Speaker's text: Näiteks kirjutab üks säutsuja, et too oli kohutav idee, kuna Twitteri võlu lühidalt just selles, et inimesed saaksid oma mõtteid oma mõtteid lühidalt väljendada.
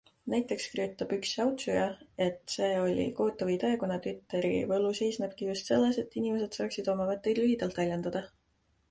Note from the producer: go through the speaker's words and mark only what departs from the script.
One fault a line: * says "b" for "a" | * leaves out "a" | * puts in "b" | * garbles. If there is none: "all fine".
* says "see" for "too"
* says "seisnebki" for "lühidalt"
* leaves out "oma mõtteid"